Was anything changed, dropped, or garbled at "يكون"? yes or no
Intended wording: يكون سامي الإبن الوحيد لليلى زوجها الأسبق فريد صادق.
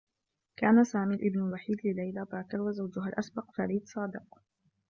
yes